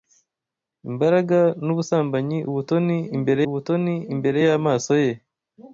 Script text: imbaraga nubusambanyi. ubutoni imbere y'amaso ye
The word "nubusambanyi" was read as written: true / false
true